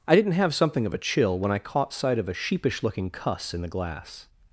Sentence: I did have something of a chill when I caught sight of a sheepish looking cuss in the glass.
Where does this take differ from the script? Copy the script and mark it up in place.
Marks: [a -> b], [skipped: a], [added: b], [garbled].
I [did -> didn't] have something of a chill when I caught sight of a sheepish looking cuss in the glass.